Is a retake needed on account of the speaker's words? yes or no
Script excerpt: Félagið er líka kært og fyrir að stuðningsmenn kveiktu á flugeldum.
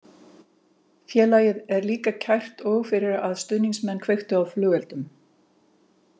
no